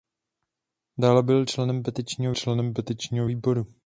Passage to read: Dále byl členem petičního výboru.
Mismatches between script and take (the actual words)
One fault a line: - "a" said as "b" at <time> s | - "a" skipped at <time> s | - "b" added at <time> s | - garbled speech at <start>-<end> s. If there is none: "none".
- "členem petičního" added at 2.3 s